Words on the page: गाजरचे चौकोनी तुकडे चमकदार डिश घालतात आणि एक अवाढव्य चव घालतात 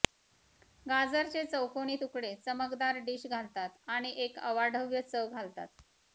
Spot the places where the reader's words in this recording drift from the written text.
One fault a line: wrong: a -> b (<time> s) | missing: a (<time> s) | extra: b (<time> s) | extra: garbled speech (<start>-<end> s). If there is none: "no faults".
no faults